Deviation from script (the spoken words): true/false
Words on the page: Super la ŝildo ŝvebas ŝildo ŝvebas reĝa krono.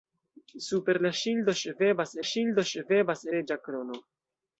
false